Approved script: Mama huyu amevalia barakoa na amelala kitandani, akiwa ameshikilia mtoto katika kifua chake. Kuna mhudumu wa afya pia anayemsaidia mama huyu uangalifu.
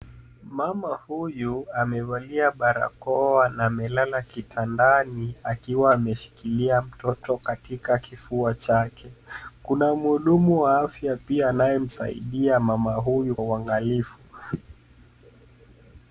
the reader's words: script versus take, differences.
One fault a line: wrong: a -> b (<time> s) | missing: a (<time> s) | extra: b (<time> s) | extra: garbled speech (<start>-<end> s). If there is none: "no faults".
no faults